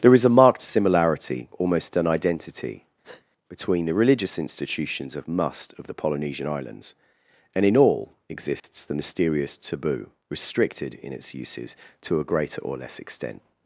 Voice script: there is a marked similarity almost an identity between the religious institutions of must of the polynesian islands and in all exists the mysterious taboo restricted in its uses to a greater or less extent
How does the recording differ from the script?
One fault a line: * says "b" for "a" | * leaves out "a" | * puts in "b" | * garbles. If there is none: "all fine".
all fine